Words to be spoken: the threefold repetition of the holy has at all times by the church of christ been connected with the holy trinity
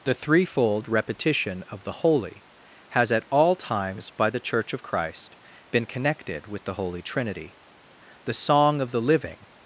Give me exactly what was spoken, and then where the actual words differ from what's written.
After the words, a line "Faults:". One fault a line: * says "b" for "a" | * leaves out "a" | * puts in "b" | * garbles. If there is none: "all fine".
the threefold repetition of the holy has at all times by the church of christ been connected with the holy trinity the song of the living
Faults:
* puts in "the song of the living"